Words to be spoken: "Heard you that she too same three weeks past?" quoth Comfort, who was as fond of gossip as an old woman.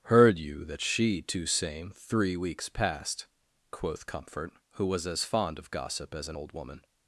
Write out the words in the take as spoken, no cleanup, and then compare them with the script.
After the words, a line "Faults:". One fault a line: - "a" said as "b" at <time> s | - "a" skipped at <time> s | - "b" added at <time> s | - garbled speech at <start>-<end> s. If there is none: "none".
"Heard you that she too same three weeks past?" quoth Comfort, who was as fond of gossip as an old woman.
Faults:
none